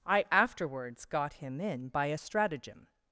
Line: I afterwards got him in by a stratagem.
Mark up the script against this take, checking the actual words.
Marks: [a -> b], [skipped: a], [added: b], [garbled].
I afterwards got him in by a stratagem.